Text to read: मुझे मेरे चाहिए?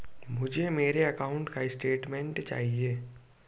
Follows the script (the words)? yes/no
no